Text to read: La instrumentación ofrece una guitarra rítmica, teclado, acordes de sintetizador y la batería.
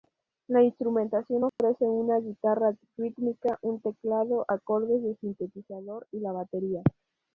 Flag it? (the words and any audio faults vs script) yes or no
yes